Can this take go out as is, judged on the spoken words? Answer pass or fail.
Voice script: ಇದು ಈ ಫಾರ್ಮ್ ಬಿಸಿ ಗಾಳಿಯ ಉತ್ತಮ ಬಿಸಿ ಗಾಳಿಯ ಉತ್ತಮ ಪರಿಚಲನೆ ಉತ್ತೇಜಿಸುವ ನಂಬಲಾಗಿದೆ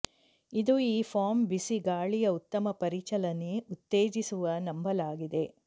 fail